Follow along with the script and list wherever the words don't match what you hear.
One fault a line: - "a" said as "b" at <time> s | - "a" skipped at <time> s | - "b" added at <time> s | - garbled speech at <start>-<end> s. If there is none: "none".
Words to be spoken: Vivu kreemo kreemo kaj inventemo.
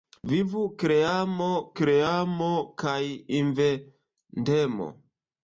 none